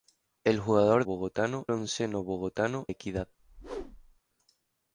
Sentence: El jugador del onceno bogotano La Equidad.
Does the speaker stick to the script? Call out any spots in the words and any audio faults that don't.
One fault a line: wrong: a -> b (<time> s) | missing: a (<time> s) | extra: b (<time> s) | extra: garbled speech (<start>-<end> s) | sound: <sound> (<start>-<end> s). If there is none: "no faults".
wrong: del -> bogotano (1.0 s)
missing: La (2.9 s)
sound: whoosh (3.4-4.2 s)